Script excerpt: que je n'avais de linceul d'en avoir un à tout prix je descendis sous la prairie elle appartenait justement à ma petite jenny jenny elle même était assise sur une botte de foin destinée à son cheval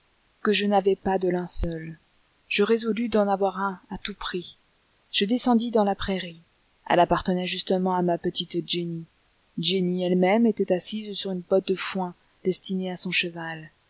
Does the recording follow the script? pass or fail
fail